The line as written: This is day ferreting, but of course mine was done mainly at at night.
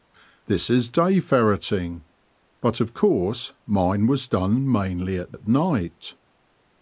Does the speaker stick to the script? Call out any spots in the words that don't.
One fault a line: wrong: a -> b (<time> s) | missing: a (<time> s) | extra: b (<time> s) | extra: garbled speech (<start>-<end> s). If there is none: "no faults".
no faults